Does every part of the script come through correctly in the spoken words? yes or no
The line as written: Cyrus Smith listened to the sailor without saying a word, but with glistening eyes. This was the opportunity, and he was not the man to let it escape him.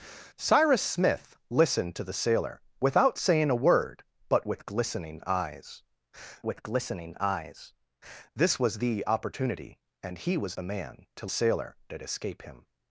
no